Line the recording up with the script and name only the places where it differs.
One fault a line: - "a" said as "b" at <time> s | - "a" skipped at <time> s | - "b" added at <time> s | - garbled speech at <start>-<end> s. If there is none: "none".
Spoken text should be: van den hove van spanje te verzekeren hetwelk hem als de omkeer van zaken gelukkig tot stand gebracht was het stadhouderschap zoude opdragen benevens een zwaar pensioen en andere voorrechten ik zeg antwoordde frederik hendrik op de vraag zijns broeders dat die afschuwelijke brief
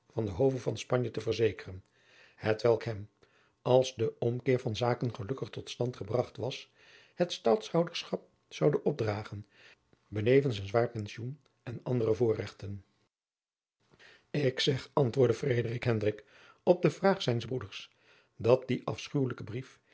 none